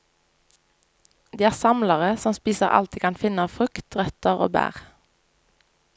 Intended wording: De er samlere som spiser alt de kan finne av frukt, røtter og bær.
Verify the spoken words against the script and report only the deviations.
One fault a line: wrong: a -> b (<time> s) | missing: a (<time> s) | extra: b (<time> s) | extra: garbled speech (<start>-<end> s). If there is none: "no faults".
no faults